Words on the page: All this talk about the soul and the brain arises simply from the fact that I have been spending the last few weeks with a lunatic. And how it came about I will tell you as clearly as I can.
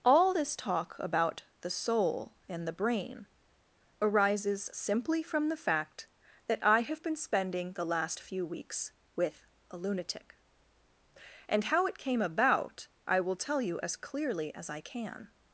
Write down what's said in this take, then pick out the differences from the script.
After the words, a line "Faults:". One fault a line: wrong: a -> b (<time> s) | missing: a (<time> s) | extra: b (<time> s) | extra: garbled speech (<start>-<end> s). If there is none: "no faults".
All this talk about the soul and the brain arises simply from the fact that I have been spending the last few weeks with a lunatic. And how it came about I will tell you as clearly as I can.
Faults:
no faults